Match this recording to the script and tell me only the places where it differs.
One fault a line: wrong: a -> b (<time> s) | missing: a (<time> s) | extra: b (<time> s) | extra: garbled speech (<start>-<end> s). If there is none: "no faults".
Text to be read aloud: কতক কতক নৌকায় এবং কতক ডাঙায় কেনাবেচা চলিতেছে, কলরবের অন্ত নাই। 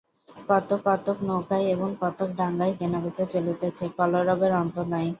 no faults